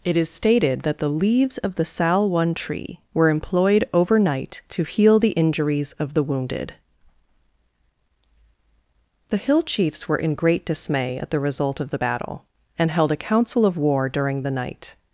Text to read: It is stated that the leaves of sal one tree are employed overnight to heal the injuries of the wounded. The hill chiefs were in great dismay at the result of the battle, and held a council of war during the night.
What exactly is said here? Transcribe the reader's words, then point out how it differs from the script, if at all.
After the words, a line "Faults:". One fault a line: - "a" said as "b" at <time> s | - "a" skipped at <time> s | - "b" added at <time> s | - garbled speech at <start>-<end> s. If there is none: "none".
It is stated that the leaves of the sal one tree were employed overnight to heal the injuries of the wounded. The hill chiefs were in great dismay at the result of the battle, and held a council of war during the night.
Faults:
- "the" added at 1.8 s
- "are" said as "were" at 3.1 s